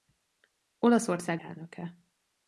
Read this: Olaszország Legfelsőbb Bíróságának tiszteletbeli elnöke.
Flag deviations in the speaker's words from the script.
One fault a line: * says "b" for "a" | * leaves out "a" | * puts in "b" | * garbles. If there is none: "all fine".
* leaves out "Legfelsőbb Bíróságának tiszteletbeli"